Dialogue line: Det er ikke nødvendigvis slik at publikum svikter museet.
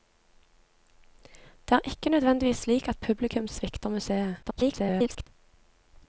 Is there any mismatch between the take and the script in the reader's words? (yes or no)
yes